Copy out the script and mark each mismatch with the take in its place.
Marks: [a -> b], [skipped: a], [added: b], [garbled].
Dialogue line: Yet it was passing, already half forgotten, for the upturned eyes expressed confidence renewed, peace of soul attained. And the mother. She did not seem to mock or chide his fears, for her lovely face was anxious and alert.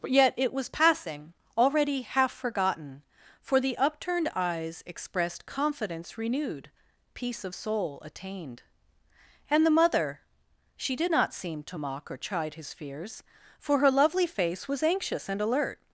Yet it was passing, already half forgotten, for the upturned eyes expressed confidence renewed, peace of soul attained. And the mother. She did not seem to mock or chide his fears, for her lovely face was anxious and alert.